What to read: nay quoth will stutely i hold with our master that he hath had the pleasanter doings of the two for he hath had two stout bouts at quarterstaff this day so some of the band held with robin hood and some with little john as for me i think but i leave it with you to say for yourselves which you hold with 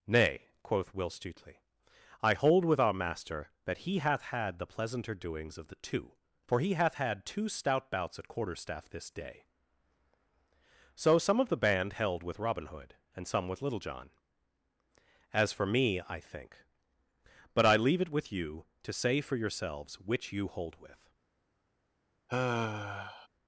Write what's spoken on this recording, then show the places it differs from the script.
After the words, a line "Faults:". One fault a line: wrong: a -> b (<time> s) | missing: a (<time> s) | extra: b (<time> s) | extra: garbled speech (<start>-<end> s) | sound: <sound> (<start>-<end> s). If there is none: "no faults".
nay quoth will stutely i hold with our master that he hath had the pleasanter doings of the two for he hath had two stout bouts at quarterstaff this day so some of the band held with robin hood and some with little john as for me i think but i leave it with you to say for yourselves which you hold with
Faults:
sound: sigh (22.3-23.3 s)